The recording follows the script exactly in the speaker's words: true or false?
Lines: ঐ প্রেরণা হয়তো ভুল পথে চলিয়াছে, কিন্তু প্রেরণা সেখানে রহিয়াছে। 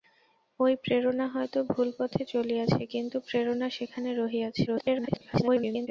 false